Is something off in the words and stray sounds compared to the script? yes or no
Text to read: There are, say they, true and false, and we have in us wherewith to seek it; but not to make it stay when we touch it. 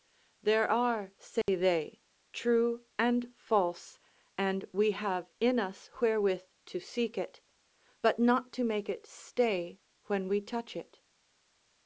yes